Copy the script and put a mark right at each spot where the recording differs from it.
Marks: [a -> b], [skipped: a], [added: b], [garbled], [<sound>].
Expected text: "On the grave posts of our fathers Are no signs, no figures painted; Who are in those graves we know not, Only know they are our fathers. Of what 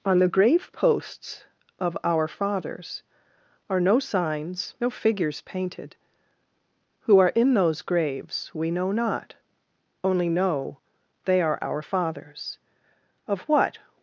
"On the grave posts of our fathers Are no signs, no figures painted; Who are in those graves we know not, Only know they are our fathers. Of what